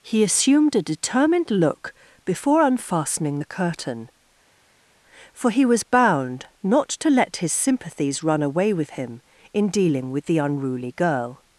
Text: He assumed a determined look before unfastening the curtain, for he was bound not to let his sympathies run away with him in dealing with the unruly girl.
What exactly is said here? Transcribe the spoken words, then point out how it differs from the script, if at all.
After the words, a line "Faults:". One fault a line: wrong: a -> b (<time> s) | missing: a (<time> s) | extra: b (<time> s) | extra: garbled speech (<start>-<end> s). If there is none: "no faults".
He assumed a determined look before unfastening the curtain, for he was bound not to let his sympathies run away with him in dealing with the unruly girl.
Faults:
no faults